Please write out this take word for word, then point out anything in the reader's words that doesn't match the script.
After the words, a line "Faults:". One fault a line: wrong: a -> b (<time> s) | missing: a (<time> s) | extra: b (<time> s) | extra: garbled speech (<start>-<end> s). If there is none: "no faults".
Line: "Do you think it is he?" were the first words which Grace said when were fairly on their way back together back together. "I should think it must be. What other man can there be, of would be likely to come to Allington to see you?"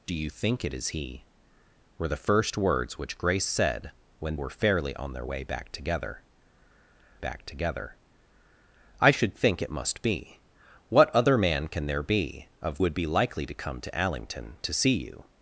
"Do you think it is he?" were the first words which Grace said when were fairly on their way back together back together. "I should think it must be. What other man can there be, of would be likely to come to Allington to see you?"
Faults:
no faults